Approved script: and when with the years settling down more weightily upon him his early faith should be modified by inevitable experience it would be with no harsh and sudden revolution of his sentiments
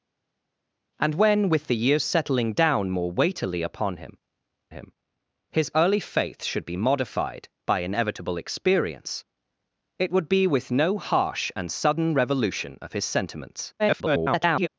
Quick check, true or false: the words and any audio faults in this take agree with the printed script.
false